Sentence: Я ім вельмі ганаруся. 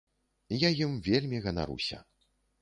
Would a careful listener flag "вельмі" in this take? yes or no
no